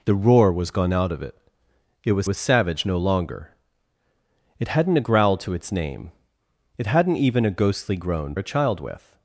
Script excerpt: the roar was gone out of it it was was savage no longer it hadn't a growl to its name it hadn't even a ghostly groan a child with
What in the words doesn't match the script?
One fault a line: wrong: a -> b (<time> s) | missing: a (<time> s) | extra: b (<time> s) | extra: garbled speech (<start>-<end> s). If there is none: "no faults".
no faults